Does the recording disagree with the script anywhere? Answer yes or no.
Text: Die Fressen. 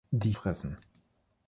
no